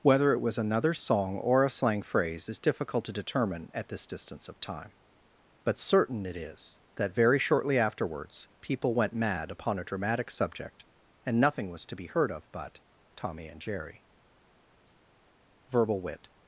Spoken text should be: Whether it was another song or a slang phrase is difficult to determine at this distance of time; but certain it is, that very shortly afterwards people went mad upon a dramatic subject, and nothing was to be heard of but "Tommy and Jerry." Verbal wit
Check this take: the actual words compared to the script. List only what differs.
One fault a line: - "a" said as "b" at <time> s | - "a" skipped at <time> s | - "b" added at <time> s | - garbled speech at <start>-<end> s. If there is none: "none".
none